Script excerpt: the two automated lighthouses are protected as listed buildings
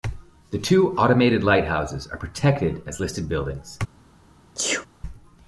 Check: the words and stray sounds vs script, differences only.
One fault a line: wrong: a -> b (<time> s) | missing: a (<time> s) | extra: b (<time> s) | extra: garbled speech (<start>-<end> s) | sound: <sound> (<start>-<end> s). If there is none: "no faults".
sound: sneeze (4.5-4.9 s)